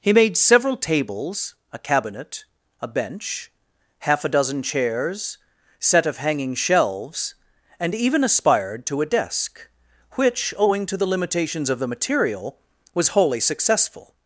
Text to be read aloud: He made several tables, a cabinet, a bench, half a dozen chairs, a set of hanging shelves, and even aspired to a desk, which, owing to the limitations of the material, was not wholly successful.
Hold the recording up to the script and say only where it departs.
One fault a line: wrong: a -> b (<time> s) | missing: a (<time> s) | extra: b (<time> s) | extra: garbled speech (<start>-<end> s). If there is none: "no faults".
missing: a (5.4 s)
missing: not (13.1 s)